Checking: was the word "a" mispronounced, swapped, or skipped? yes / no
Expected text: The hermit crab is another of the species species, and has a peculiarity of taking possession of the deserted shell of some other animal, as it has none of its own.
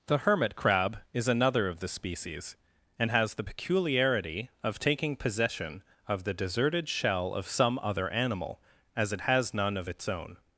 yes